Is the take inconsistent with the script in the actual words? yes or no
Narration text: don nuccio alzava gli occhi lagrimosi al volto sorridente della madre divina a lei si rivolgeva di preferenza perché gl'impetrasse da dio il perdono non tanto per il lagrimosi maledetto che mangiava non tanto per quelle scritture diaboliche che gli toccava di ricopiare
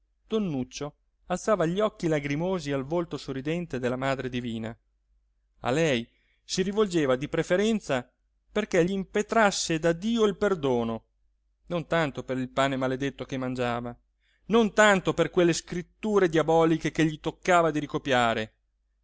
yes